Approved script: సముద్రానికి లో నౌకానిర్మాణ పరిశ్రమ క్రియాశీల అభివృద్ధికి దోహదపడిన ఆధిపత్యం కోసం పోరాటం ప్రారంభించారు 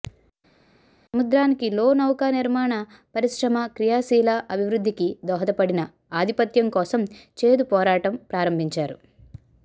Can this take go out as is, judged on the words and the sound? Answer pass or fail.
fail